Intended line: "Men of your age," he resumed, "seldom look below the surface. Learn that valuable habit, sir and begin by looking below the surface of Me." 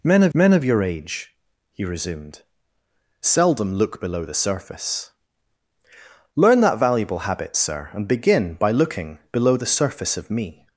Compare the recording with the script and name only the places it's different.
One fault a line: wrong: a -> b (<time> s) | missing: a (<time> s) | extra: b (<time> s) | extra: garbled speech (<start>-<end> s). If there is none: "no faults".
extra: men of (0.3 s)